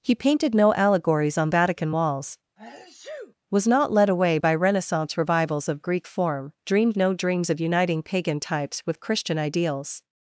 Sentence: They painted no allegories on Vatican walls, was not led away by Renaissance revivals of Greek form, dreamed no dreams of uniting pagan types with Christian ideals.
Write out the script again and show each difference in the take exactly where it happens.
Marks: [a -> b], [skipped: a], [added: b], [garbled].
[They -> He] painted no allegories on Vatican walls, was not led away by Renaissance revivals of Greek form, dreamed no dreams of uniting pagan types with Christian ideals.